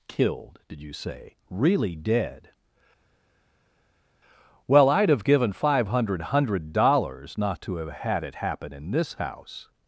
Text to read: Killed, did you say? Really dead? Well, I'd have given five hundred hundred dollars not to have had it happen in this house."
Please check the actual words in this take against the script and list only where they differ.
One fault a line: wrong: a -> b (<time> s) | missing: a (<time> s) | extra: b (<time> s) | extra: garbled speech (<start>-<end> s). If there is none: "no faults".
no faults